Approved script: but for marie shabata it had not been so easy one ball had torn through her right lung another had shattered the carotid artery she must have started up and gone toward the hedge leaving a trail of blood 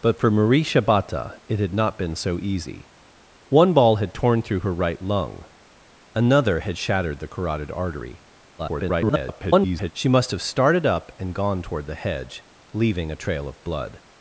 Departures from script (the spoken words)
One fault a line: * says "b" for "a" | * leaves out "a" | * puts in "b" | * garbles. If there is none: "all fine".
* garbles